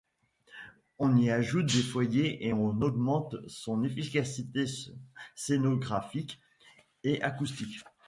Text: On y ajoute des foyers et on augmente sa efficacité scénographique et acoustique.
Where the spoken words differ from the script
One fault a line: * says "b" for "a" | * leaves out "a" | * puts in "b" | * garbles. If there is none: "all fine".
* says "son" for "sa"